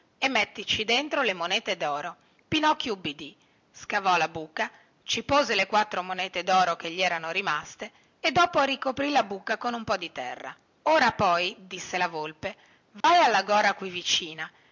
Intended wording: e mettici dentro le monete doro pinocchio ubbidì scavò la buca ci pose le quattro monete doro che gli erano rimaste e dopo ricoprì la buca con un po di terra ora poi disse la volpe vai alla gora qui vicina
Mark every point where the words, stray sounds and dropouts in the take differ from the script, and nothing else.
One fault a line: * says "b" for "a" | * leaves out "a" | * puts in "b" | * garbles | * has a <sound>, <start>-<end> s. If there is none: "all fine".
* has a dropout, 13.0-13.0 s